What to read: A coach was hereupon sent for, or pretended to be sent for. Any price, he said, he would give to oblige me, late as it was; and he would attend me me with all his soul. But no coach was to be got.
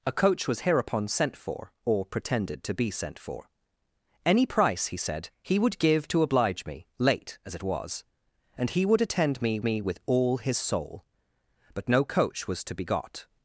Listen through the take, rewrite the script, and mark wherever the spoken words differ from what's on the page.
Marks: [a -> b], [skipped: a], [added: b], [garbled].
A coach was hereupon sent for, or pretended to be sent for. Any price, he said, he would give to oblige me, late as it was; and he would attend me me with all his soul. But no coach was to be got.